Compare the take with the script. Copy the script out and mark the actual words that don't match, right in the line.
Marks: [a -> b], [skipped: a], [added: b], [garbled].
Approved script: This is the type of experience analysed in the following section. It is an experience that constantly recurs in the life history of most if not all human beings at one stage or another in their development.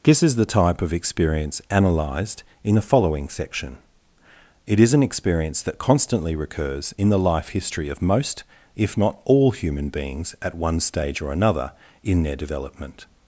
This is the type of experience analysed in the following section. It is an experience that constantly recurs in the life history of most if not all human beings at one stage or another in their development.